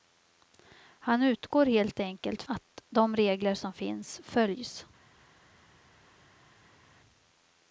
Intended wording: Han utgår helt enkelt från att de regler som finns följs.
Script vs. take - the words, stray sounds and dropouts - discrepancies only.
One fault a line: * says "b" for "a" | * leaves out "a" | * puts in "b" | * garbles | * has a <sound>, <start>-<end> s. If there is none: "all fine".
* leaves out "från"